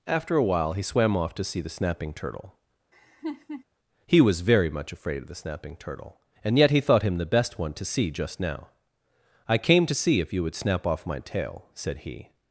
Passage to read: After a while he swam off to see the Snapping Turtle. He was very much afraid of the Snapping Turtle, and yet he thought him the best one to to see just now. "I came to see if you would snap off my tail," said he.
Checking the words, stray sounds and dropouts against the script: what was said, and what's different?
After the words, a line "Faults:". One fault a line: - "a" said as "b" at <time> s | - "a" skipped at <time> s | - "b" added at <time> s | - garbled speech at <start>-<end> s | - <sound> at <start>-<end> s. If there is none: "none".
After a while he swam off to see the Snapping Turtle. He was very much afraid of the Snapping Turtle, and yet he thought him the best one to see just now. "I came to see if you would snap off my tail," said he.
Faults:
- laugh at 2.9-3.6 s
- "to" skipped at 7.9 s